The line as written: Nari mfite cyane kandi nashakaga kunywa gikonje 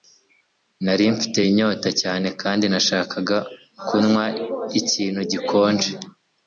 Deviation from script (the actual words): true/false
true